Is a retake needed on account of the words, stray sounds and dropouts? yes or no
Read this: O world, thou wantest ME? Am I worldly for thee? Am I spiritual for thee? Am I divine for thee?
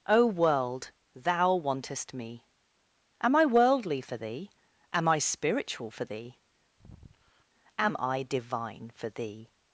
yes